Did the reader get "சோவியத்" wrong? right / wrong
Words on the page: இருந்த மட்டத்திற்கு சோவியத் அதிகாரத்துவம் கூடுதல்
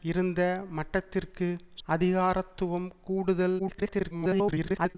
wrong